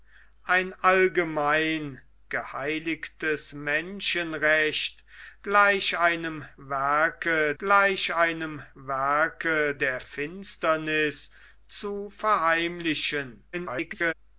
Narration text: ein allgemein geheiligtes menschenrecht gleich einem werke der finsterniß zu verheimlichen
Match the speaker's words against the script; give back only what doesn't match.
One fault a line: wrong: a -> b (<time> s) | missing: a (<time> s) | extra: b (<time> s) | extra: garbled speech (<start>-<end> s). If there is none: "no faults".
extra: gleich einem werke (7.6 s)
extra: garbled speech (13.5-14.1 s)